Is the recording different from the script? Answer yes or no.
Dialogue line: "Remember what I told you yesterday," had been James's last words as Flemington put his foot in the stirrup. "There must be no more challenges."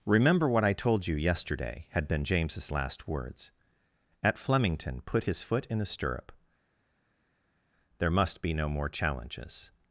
yes